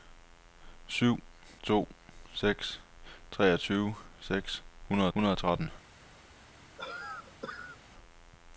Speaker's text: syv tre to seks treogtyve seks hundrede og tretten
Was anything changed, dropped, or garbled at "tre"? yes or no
yes